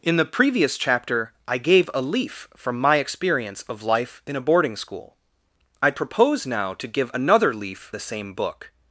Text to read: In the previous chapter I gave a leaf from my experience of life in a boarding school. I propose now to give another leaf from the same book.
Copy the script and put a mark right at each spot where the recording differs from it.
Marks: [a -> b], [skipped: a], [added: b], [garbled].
In the previous chapter I gave a leaf from my experience of life in a boarding school. I propose now to give another leaf [skipped: from] the same book.